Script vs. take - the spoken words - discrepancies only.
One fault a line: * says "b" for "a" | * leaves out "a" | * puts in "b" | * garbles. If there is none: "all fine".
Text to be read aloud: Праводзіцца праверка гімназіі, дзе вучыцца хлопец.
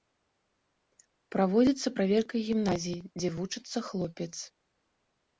all fine